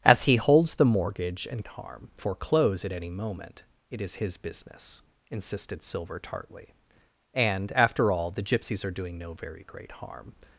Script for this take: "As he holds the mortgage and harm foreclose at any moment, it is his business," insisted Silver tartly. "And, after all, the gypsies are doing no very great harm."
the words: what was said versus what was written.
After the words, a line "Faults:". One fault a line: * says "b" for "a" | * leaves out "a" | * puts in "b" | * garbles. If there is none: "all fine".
"As he holds the mortgage and harm foreclose at any moment, it is his business," insisted Silver tartly. "And, after all, the gypsies are doing no very great harm."
Faults:
all fine